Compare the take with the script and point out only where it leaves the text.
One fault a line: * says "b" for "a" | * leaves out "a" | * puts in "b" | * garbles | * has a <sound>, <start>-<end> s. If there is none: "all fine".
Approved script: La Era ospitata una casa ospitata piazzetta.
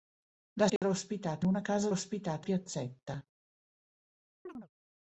* has a dropout, 0.8-0.8 s
* has a chirp, 4.5-4.7 s